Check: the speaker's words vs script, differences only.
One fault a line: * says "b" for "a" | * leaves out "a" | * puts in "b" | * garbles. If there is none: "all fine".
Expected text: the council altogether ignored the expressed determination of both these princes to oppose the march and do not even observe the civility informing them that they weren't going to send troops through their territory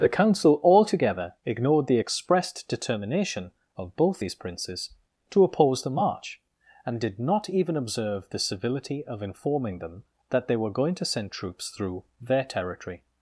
* says "did" for "do"
* puts in "of"
* says "were" for "weren't"